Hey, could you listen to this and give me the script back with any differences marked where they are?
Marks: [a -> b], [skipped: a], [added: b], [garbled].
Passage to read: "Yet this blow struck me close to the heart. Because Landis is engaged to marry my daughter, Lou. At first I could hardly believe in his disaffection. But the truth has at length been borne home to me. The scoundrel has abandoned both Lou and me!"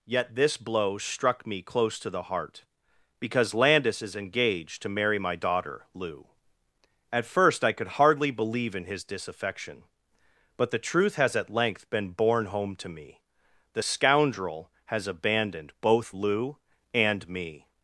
"Yet this blow struck me close to the heart. Because Landis is engaged to marry my daughter, Lou. At first I could hardly believe in his disaffection. But the truth has at length been borne home to me. The scoundrel has abandoned both Lou and me!"